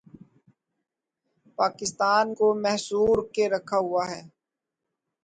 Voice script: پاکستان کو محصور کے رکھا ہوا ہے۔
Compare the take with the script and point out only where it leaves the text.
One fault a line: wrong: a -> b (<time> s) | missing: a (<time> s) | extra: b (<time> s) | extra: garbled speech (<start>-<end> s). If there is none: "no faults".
no faults